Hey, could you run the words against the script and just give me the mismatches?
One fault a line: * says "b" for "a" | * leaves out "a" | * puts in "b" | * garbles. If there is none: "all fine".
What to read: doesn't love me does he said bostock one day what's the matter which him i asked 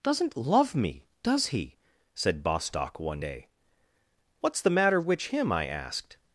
all fine